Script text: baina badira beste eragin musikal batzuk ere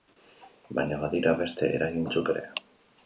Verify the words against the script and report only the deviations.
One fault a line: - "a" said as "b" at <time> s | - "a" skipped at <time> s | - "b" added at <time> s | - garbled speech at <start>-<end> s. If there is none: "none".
- "musikal" skipped at 2.1 s